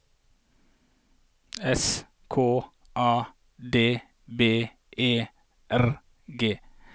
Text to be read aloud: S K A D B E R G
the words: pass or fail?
pass